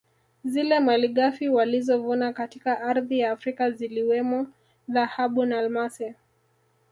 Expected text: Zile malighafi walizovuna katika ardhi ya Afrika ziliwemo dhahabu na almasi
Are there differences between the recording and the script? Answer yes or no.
no